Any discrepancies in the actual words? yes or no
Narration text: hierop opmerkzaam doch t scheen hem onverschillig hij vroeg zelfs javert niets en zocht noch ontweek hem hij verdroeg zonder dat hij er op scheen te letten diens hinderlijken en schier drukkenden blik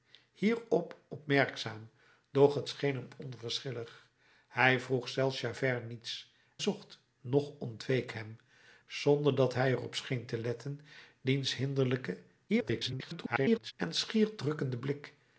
yes